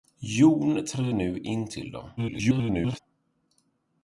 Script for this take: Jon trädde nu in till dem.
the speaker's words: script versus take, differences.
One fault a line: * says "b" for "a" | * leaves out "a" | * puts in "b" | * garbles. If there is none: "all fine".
* garbles